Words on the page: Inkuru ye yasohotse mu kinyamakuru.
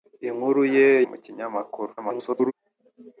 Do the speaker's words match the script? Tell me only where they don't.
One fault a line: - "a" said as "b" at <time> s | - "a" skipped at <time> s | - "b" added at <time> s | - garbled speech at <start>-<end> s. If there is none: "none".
- "yasohotse" skipped at 0.9 s
- garbled speech at 2.0-2.5 s